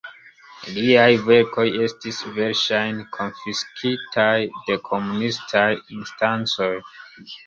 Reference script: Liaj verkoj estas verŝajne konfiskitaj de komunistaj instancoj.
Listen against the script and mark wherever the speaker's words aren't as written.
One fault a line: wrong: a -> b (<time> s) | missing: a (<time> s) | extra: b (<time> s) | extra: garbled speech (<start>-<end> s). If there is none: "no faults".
wrong: estas -> estis (1.9 s)